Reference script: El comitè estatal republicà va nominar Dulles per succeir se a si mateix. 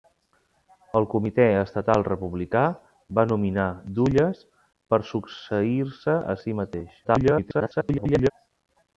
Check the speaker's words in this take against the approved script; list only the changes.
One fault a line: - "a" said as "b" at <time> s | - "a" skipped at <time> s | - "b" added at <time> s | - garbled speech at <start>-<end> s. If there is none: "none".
- garbled speech at 7.0-8.3 s